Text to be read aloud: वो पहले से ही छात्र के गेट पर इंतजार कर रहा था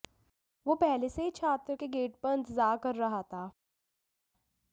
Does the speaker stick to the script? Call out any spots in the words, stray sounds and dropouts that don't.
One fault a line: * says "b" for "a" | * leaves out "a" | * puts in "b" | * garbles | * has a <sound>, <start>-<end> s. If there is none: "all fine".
all fine